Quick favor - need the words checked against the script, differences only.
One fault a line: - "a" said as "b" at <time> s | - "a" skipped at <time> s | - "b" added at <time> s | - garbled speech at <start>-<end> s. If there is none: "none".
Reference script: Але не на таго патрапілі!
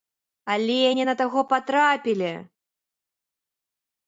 none